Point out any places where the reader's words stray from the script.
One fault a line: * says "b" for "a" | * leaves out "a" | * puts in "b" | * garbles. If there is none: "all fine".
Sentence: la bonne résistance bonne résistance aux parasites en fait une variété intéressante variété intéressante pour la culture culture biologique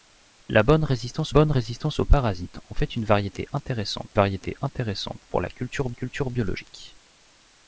all fine